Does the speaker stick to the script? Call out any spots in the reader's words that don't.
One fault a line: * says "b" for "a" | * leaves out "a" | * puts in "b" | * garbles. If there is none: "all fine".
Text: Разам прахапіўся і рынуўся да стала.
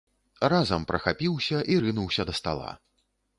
all fine